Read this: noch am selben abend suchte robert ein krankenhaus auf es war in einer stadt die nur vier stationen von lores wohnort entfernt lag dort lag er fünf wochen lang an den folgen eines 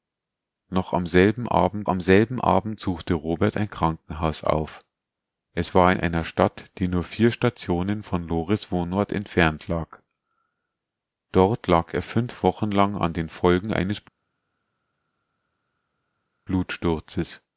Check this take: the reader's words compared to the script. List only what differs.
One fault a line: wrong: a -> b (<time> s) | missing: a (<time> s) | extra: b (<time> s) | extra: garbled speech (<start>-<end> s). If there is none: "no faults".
extra: am selben abend (1.9 s)